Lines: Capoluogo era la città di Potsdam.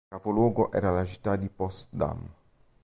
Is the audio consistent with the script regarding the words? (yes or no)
yes